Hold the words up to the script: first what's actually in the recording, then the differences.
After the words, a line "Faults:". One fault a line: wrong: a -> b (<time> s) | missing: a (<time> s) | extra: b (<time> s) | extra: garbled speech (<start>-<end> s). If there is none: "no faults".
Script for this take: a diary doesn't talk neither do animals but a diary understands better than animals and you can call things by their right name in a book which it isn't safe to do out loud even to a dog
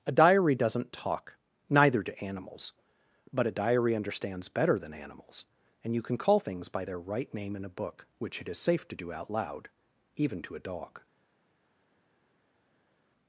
a diary doesn't talk neither do animals but a diary understands better than animals and you can call things by their right name in a book which it is safe to do out loud even to a dog
Faults:
wrong: isn't -> is (8.5 s)